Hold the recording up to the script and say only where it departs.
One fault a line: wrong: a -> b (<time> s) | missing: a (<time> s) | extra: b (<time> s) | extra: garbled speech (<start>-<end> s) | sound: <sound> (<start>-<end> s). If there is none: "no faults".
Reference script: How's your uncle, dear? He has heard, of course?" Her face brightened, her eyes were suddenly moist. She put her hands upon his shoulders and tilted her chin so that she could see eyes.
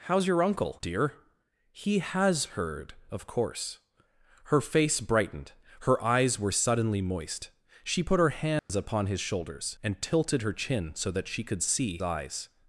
sound: dropout (8.6-8.7 s)